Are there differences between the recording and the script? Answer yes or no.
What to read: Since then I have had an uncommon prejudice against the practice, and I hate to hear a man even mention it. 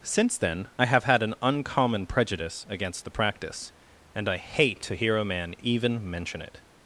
no